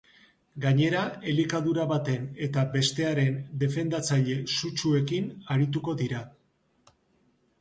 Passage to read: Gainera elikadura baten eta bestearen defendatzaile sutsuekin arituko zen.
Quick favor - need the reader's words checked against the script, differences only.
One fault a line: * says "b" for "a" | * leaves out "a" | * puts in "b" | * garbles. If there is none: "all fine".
* says "dira" for "zen"